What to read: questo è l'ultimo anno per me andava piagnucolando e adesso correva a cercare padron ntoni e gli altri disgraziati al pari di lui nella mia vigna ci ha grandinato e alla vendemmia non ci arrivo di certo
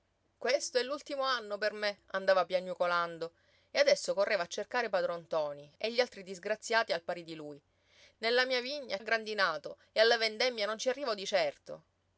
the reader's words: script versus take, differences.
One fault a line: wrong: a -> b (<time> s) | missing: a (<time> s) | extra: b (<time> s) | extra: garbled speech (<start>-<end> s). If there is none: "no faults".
missing: ci (9.0 s)